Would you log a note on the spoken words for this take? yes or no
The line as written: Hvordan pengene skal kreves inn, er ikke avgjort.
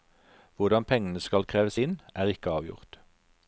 no